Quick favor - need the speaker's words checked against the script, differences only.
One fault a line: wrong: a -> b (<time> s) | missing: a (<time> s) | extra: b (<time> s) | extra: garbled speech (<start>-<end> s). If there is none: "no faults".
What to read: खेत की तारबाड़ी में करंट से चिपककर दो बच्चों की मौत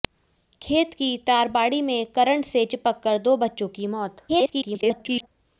extra: garbled speech (4.3-5.3 s)